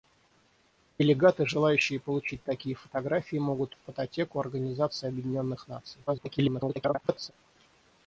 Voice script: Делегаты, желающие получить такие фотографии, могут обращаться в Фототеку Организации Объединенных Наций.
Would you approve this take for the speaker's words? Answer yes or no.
no